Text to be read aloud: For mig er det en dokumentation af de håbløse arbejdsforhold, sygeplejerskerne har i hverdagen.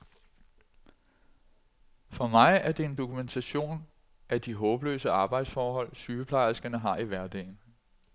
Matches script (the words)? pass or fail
pass